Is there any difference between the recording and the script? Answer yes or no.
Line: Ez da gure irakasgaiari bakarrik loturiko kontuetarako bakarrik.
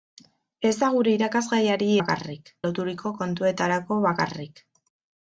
no